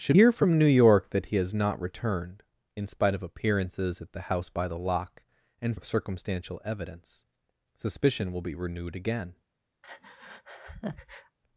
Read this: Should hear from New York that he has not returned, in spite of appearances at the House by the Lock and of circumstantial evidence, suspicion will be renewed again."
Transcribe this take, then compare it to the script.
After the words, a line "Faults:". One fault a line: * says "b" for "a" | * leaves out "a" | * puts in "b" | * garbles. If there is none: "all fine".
Should hear from New York that he has not returned, in spite of appearances at the House by the Lock and of circumstantial evidence, suspicion will be renewed again."
Faults:
all fine